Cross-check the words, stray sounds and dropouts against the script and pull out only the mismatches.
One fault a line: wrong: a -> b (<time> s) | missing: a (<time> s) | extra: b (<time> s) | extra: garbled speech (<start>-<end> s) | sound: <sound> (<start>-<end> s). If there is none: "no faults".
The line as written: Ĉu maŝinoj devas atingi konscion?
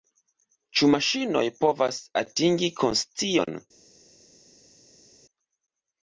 wrong: devas -> povas (1.7 s)